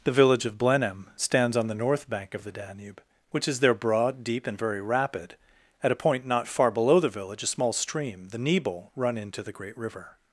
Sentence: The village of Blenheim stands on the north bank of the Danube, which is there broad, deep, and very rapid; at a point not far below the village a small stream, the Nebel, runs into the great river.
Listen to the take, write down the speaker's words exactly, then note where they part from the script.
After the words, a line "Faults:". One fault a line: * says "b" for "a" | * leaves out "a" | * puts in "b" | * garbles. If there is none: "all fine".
The village of Blenheim stands on the north bank of the Danube, which is there broad, deep, and very rapid; at a point not far below the village a small stream, the Nebel, run into the great river.
Faults:
* says "run" for "runs"